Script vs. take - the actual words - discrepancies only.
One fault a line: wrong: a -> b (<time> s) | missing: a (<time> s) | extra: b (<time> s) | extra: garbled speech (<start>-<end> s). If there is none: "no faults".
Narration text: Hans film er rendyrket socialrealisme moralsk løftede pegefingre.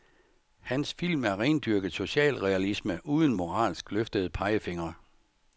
extra: uden (3.0 s)